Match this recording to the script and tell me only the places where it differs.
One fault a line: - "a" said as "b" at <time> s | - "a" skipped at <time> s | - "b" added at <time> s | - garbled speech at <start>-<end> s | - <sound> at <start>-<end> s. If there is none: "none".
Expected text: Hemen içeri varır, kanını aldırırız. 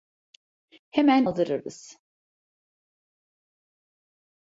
- "içeri varır kanını" skipped at 1.3 s